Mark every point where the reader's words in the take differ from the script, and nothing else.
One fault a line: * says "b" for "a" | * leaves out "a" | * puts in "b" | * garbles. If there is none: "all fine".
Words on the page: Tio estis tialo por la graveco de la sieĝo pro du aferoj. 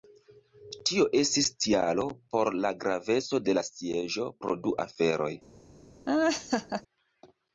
all fine